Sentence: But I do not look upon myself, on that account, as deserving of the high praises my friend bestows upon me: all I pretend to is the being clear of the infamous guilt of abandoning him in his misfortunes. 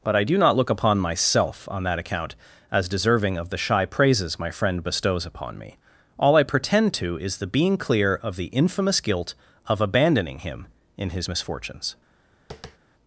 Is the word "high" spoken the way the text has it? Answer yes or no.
no